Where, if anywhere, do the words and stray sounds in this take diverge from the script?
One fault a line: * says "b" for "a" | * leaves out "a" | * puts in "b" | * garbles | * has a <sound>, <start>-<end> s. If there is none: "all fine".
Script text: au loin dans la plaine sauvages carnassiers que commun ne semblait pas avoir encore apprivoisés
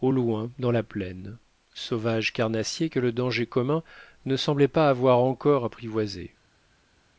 * puts in "le danger"